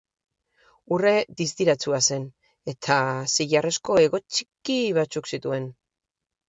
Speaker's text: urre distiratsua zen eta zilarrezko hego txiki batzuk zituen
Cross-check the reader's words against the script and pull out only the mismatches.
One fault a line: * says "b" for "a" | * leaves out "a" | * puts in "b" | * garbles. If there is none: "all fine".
all fine